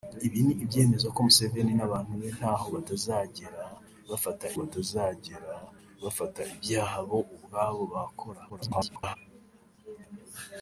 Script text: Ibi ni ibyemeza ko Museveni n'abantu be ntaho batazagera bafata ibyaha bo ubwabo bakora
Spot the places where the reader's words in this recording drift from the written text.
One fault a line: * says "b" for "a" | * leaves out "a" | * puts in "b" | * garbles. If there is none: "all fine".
* puts in "batazagera bafata"
* garbles